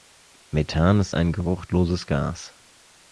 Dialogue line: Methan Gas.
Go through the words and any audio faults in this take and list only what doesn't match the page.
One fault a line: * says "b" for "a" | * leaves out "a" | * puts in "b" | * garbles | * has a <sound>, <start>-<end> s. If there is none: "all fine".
* puts in "ist ein geruchloses"